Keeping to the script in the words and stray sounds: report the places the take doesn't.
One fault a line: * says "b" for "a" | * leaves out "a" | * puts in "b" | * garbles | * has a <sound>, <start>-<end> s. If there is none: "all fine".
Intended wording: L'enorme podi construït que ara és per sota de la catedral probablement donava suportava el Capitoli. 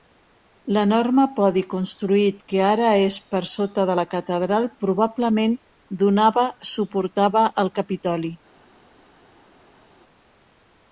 all fine